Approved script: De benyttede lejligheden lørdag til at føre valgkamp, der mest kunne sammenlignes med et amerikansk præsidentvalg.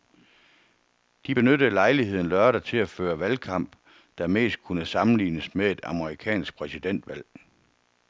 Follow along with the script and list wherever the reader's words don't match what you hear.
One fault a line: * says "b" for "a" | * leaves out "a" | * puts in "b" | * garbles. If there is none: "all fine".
all fine